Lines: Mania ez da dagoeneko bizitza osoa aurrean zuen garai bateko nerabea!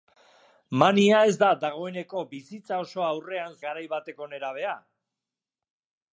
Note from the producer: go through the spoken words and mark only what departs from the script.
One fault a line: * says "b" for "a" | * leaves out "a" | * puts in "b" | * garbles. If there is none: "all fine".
* leaves out "zuen"